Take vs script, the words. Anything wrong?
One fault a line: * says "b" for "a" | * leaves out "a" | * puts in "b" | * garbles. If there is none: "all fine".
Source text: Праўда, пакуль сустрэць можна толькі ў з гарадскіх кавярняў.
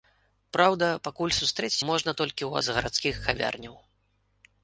all fine